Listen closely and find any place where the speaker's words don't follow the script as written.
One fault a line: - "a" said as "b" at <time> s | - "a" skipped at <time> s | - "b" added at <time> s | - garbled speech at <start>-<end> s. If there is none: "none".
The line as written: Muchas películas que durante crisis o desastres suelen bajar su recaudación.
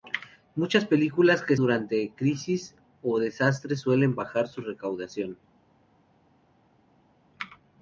none